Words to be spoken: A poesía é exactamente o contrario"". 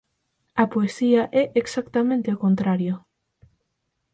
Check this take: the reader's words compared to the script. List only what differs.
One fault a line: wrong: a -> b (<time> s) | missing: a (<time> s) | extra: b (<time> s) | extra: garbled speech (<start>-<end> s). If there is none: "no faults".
no faults